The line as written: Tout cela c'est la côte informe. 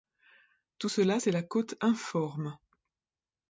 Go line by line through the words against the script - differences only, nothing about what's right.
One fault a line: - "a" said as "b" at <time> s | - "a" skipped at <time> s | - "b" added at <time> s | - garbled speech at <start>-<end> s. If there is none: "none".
none